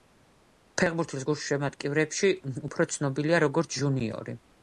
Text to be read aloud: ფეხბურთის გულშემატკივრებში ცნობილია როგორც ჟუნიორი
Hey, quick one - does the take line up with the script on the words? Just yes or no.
no